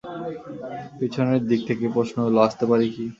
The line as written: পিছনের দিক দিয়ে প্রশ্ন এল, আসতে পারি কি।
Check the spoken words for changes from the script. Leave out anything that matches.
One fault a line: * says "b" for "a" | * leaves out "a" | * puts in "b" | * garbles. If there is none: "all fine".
* says "থেকে" for "দিয়ে"